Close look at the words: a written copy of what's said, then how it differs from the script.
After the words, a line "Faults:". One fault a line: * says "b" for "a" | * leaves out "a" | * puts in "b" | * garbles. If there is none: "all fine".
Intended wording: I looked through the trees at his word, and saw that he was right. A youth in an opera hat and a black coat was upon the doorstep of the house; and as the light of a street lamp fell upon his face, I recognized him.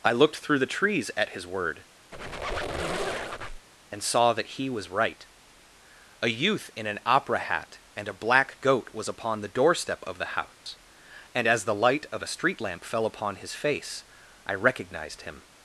I looked through the trees at his word, and saw that he was right. A youth in an opera hat and a black goat was upon the doorstep of the house; and as the light of a street lamp fell upon his face, I recognized him.
Faults:
* says "goat" for "coat"